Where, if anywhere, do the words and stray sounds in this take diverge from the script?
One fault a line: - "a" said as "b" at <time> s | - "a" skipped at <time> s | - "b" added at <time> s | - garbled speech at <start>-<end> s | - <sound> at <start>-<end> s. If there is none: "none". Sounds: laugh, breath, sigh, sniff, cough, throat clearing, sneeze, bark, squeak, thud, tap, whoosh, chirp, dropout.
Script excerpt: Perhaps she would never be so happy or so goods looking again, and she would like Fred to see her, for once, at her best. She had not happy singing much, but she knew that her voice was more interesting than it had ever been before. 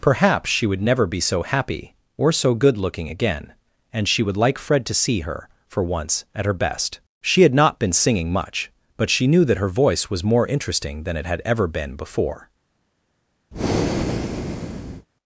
- "goods" said as "good" at 2.5 s
- "happy" said as "been" at 7.8 s
- breath at 13.5-15.1 s